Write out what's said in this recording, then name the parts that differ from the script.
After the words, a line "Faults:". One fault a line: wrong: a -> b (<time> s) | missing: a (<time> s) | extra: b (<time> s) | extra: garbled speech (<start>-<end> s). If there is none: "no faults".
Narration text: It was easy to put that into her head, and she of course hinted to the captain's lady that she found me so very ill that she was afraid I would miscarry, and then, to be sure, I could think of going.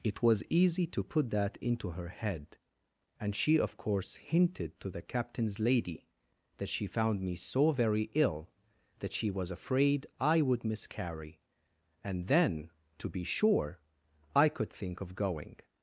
It was easy to put that into her head, and she of course hinted to the captain's lady that she found me so very ill that she was afraid I would miscarry, and then, to be sure, I could think of going.
Faults:
no faults